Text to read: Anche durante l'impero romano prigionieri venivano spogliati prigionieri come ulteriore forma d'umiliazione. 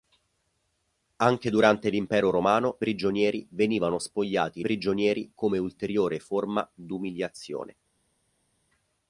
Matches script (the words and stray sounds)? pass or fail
pass